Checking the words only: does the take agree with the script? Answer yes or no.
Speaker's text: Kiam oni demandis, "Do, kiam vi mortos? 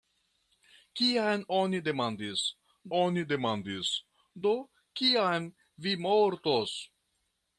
no